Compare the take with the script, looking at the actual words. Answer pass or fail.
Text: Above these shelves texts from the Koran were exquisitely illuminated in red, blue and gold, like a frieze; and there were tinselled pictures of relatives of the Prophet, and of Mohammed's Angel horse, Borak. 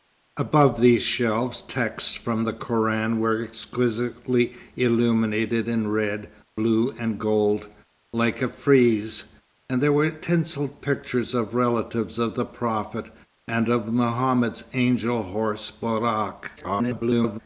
fail